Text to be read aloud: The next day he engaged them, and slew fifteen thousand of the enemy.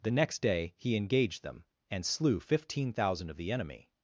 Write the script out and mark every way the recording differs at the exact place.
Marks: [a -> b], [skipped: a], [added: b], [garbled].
The next day he engaged them, and slew fifteen thousand of the enemy.